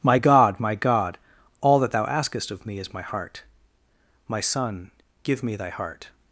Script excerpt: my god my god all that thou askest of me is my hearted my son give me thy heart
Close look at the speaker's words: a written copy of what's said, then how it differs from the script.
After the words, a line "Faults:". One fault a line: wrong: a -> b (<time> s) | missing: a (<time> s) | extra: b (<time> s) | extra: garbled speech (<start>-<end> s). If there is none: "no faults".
my god my god all that thou askest of me is my heart my son give me thy heart
Faults:
wrong: hearted -> heart (3.0 s)